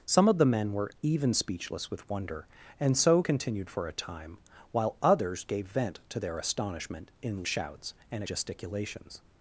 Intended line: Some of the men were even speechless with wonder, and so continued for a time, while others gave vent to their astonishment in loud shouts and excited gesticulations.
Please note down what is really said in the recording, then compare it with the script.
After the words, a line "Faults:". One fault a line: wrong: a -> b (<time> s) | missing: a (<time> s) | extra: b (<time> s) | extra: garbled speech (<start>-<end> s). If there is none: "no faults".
Some of the men were even speechless with wonder, and so continued for a time, while others gave vent to their astonishment in shouts and gesticulations.
Faults:
missing: loud (7.5 s)
missing: excited (8.2 s)